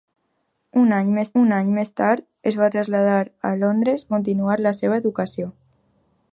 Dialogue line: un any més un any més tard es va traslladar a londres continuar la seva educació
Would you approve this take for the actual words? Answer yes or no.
yes